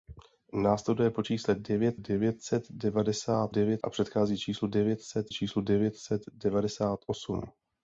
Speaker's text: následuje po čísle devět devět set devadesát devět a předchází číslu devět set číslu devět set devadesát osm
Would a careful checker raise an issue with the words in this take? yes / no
no